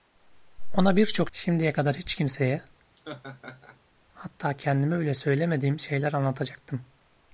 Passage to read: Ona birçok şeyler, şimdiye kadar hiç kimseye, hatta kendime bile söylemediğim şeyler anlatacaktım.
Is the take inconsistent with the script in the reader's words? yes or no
yes